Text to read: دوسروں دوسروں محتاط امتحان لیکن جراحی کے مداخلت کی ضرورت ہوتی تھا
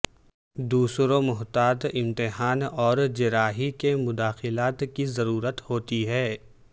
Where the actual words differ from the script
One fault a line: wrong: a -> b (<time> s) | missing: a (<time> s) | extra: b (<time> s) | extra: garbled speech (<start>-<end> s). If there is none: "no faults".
missing: دوسروں (1.2 s)
wrong: لیکن -> اور (2.6 s)
wrong: تھا -> ہے (6.1 s)